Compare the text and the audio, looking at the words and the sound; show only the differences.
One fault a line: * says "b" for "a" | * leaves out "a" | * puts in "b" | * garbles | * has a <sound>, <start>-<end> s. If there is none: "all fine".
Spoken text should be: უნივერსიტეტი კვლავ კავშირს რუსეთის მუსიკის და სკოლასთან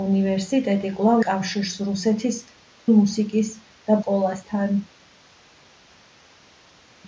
all fine